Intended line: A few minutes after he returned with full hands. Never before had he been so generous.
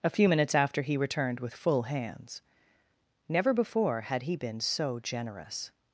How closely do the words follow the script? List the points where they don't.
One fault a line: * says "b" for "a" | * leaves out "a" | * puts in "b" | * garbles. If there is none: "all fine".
all fine